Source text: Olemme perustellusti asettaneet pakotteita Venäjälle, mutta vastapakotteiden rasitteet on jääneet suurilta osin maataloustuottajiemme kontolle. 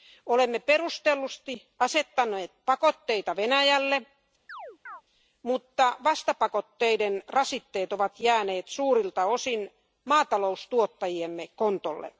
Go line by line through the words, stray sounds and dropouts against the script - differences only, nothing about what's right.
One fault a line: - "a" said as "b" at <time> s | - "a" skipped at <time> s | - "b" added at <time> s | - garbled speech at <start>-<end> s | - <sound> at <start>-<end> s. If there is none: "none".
- chirp at 4.5-5.0 s
- "on" said as "ovat" at 7.9 s